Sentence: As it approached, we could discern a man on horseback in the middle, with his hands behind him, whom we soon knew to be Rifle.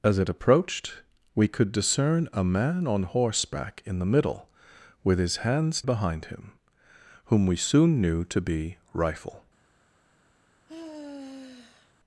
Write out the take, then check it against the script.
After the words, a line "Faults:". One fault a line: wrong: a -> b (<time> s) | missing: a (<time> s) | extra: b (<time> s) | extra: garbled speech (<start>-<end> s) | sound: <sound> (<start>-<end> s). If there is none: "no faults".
As it approached, we could discern a man on horseback in the middle, with his hands behind him, whom we soon knew to be Rifle.
Faults:
sound: sigh (10.7-11.9 s)